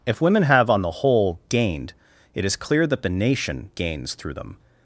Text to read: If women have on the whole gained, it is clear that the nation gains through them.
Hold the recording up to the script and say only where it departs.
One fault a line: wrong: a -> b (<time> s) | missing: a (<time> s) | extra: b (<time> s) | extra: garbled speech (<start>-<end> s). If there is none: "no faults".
no faults